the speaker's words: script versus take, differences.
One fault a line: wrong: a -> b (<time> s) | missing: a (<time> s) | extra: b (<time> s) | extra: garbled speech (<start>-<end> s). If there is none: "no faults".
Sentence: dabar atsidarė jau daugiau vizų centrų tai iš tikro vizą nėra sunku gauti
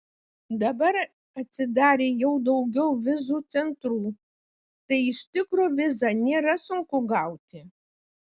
no faults